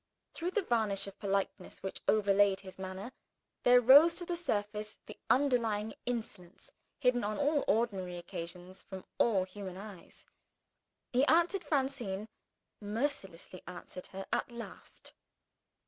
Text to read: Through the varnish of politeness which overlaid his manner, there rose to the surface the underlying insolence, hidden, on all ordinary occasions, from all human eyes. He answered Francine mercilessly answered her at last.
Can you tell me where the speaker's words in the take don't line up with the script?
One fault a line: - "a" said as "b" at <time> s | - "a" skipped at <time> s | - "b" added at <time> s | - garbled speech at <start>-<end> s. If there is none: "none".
none